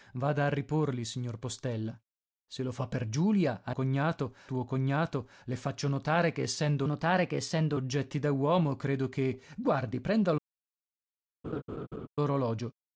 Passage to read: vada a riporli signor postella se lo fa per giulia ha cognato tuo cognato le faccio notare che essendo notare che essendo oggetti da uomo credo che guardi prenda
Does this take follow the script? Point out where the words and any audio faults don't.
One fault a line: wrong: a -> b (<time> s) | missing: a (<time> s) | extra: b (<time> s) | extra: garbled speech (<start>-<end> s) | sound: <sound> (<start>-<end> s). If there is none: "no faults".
sound: laugh (11.4-12.1 s)